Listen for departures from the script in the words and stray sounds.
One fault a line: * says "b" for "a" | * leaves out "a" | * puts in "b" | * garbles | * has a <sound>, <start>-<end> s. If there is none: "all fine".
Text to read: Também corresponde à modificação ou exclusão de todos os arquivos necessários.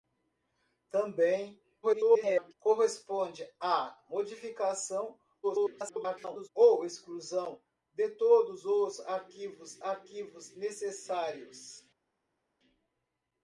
* garbles
* garbles
* puts in "arquivos"